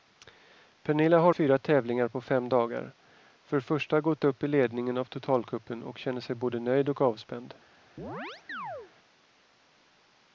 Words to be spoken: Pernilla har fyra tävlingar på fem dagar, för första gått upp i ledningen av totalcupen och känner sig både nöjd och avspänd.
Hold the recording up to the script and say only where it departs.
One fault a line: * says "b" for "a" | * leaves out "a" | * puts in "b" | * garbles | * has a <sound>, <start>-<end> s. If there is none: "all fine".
* has a chirp, 8.0-8.9 s